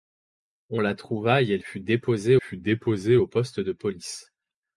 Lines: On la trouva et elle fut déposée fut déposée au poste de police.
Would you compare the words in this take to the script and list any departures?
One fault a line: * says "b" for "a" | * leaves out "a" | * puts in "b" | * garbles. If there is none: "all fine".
all fine